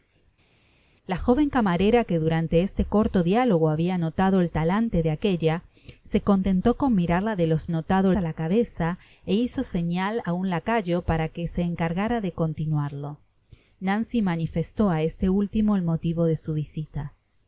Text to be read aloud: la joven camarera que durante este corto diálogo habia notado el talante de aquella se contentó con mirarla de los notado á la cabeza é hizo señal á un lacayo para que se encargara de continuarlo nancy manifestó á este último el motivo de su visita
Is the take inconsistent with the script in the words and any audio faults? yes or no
no